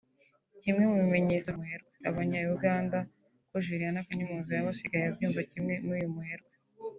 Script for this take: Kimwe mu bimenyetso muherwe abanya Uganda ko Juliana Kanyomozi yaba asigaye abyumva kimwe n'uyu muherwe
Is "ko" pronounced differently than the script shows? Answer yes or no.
no